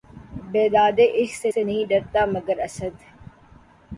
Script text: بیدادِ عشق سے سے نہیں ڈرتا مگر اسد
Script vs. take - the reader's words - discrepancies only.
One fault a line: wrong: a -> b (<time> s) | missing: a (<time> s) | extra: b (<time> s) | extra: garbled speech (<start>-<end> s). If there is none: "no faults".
no faults